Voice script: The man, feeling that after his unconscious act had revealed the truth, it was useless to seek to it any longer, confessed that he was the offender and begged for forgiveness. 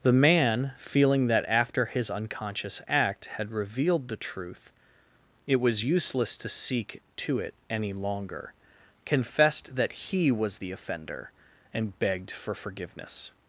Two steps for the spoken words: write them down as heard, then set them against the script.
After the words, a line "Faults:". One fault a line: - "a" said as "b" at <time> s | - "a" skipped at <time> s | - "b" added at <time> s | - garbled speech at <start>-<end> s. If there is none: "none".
The man, feeling that after his unconscious act had revealed the truth, it was useless to seek to it any longer, confessed that he was the offender and begged for forgiveness.
Faults:
none